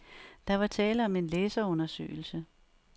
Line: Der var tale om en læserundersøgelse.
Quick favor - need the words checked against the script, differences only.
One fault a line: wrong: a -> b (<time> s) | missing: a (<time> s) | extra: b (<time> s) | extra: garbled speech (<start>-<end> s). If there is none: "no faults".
no faults